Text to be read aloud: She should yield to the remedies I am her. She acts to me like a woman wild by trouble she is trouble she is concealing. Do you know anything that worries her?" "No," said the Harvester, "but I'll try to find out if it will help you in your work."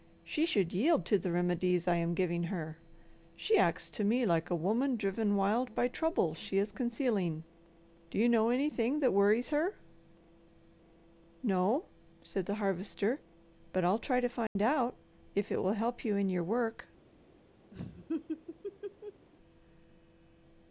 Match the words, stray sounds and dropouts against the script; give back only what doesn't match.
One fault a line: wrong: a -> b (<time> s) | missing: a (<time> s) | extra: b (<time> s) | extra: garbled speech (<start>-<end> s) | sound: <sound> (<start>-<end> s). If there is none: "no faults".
extra: giving (2.1 s)
extra: driven (5.0 s)
missing: trouble she is (6.7 s)
sound: dropout (14.5-14.6 s)
sound: laugh (17.7-19.3 s)